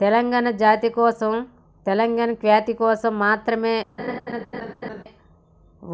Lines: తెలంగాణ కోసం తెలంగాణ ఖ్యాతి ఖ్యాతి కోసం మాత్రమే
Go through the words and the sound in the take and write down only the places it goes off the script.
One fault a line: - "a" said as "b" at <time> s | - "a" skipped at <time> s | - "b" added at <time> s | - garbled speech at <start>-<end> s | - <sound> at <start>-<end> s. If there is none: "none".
- "జాతి" added at 0.6 s
- "ఖ్యాతి" skipped at 2.7 s
- laugh at 4.0-5.0 s